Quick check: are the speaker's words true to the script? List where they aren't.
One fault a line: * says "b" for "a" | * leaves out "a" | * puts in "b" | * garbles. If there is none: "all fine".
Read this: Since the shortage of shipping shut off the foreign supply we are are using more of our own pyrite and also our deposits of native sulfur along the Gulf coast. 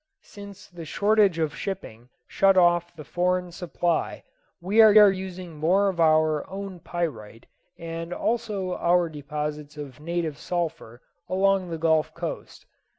all fine